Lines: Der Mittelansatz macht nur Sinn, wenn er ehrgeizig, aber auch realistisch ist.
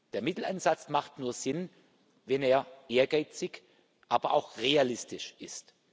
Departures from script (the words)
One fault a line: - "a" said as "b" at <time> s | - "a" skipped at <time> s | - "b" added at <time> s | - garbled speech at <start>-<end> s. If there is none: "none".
none